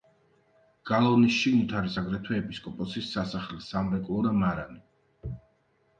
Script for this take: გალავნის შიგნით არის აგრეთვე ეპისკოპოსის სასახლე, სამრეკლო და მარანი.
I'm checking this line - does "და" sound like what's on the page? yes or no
yes